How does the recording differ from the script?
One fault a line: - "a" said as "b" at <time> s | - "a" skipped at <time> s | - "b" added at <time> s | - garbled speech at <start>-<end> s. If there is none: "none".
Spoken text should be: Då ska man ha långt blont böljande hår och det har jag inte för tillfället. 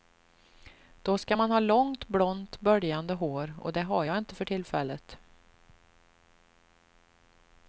none